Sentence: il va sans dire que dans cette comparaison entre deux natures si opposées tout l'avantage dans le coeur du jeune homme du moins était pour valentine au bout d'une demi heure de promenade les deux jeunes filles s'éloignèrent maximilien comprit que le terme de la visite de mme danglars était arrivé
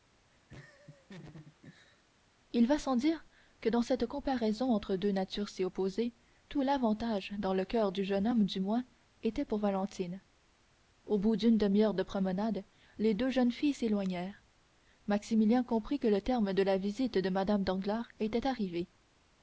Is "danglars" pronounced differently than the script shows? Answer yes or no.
no